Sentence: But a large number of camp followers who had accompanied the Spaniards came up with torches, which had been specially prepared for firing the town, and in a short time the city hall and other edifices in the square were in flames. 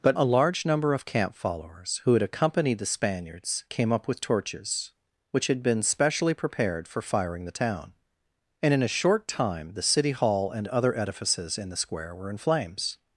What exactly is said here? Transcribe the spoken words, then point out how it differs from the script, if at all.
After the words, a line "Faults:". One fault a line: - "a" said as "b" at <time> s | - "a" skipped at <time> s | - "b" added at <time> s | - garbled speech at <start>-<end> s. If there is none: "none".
But a large number of camp followers who had accompanied the Spaniards came up with torches, which had been specially prepared for firing the town, and in a short time the city hall and other edifices in the square were in flames.
Faults:
none